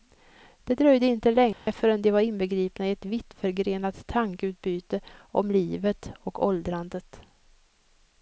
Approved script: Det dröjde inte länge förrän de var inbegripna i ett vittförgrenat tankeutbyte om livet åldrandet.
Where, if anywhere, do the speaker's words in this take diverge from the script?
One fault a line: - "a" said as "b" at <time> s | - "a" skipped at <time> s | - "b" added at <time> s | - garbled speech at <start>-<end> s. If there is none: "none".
- "och" added at 6.2 s